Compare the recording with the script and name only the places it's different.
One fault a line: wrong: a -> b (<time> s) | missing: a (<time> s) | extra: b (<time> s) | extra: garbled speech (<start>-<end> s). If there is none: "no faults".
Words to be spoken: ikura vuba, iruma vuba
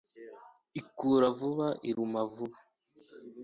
no faults